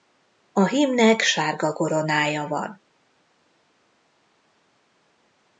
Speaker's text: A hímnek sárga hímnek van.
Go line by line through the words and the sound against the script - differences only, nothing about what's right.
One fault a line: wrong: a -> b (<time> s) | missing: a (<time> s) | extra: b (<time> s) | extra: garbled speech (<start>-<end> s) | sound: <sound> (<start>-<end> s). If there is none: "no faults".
wrong: hímnek -> koronája (1.7 s)